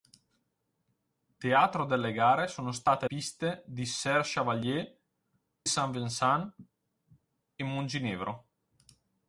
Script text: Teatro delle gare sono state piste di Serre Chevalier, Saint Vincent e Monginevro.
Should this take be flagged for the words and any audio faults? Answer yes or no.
no